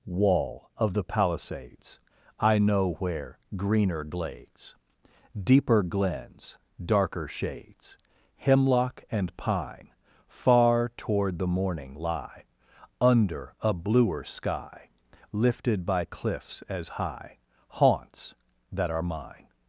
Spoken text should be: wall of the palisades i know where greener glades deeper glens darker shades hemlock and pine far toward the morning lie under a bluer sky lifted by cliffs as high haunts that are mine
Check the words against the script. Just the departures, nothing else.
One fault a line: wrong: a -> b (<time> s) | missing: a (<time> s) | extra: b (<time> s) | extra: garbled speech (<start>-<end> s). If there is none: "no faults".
no faults